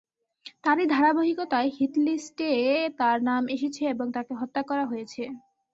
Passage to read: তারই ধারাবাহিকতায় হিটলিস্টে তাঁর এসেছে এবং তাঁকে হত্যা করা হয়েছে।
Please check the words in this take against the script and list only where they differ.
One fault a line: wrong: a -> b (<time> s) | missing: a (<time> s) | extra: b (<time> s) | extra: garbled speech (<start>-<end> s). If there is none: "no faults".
extra: নাম (3.3 s)